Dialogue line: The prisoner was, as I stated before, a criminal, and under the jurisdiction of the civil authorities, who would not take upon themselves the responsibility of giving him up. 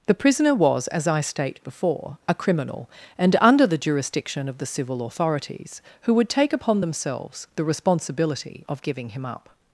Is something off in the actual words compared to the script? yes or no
yes